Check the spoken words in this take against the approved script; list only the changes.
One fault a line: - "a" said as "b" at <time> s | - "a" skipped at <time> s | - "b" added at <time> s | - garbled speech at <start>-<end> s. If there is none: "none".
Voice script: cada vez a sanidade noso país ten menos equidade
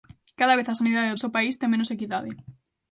none